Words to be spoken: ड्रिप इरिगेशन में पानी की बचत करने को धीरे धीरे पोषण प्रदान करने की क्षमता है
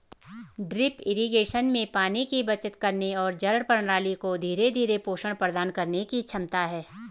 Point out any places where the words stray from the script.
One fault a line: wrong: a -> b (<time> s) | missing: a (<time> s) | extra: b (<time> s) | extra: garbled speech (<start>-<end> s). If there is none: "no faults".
extra: और जड़ प्रणाली (3.1 s)